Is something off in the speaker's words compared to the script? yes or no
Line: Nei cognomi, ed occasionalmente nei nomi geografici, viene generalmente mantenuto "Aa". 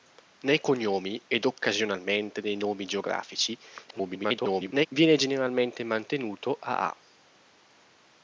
yes